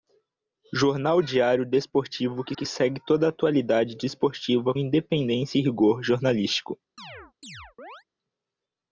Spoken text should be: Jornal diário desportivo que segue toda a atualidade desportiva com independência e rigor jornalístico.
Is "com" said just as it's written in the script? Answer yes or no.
no